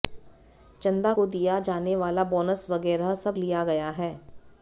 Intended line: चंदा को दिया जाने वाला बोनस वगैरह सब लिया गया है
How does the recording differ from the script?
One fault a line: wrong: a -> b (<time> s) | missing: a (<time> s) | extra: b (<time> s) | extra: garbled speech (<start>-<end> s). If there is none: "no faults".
no faults